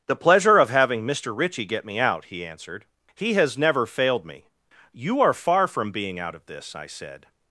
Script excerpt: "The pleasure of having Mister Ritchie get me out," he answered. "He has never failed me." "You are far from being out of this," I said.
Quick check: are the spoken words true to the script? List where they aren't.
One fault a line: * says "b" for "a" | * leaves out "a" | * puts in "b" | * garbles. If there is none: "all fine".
all fine